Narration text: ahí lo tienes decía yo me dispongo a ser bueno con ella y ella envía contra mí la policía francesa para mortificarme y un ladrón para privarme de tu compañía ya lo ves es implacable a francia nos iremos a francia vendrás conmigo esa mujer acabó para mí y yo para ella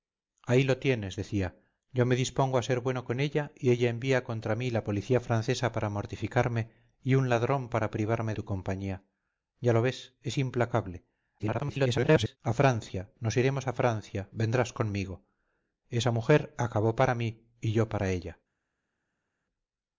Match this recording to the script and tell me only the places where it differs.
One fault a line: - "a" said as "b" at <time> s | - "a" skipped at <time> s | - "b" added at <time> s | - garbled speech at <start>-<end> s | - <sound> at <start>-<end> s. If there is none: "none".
- "de" skipped at 8.3 s
- garbled speech at 11.4-12.4 s